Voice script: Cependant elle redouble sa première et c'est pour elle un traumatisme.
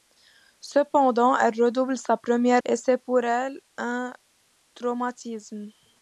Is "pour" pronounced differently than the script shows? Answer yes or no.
no